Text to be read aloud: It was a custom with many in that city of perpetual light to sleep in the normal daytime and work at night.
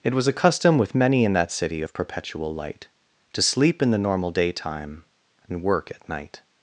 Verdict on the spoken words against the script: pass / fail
pass